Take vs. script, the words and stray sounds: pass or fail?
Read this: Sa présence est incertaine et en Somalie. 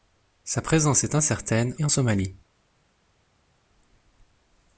pass